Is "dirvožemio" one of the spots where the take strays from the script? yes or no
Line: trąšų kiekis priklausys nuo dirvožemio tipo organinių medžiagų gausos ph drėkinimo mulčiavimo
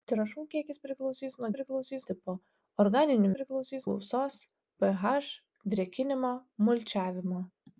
yes